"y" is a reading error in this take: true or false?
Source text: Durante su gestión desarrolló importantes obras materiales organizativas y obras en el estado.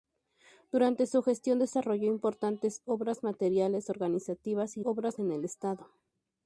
false